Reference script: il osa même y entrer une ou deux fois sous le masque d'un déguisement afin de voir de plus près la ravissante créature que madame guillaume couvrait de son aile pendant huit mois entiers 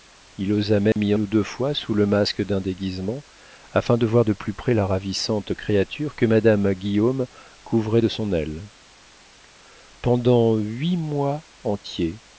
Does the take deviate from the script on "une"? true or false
true